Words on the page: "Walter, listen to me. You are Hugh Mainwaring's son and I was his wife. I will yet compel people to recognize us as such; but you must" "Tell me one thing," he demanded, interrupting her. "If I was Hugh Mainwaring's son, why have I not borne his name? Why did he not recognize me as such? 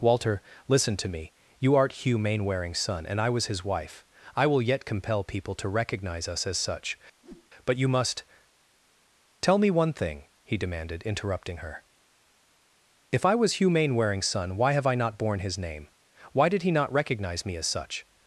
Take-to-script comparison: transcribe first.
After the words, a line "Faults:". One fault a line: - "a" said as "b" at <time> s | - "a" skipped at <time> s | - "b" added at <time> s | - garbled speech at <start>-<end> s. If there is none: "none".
"Walter, listen to me. You art Hugh Mainwaring's son and I was his wife. I will yet compel people to recognize us as such; but you must" "Tell me one thing," he demanded, interrupting her. "If I was Hugh Mainwaring's son, why have I not borne his name? Why did he not recognize me as such?
Faults:
- "are" said as "art" at 1.8 s